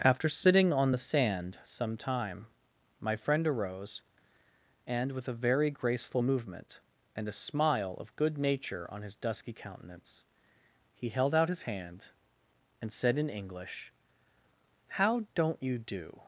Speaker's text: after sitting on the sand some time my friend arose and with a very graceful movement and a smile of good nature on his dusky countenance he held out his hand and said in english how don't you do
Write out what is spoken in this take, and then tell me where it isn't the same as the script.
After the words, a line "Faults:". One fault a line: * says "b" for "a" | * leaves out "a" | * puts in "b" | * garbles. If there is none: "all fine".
after sitting on the sand some time my friend arose and with a very graceful movement and a smile of good nature on his dusky countenance he held out his hand and said in english how don't you do
Faults:
all fine